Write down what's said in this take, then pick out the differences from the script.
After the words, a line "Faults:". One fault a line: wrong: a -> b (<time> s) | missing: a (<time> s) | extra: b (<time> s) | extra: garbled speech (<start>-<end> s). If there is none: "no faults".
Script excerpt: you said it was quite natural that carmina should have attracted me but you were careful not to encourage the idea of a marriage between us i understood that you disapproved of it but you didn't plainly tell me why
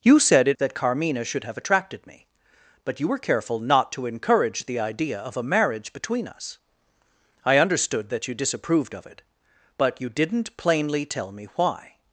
you said it that carmina should have attracted me but you were careful not to encourage the idea of a marriage between us i understood that you disapproved of it but you didn't plainly tell me why
Faults:
missing: was quite natural (0.6 s)